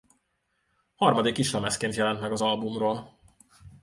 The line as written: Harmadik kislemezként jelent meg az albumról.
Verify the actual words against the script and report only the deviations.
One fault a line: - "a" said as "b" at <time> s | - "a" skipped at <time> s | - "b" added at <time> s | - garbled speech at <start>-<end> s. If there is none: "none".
none